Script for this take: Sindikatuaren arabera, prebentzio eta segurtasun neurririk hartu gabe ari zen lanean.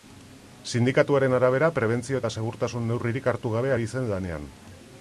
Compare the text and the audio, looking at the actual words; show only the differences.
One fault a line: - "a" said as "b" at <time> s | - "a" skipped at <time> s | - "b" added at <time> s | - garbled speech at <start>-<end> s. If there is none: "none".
none